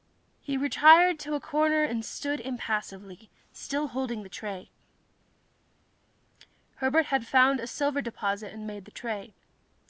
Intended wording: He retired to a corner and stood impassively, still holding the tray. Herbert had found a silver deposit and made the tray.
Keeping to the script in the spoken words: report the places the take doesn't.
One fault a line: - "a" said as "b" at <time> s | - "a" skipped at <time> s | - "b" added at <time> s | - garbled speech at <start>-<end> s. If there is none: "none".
none